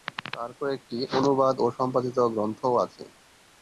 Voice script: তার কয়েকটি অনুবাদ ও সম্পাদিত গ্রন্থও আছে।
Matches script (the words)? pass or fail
pass